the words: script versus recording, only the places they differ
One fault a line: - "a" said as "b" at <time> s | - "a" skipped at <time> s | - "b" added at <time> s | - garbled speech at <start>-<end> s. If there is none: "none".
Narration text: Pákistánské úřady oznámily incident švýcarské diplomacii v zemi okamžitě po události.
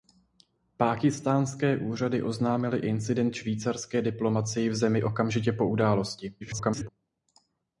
- garbled speech at 6.4-6.9 s